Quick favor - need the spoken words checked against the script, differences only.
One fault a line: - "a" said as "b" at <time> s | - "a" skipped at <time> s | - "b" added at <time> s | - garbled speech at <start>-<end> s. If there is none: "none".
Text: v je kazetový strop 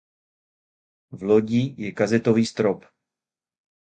- "lodi" added at 1.2 s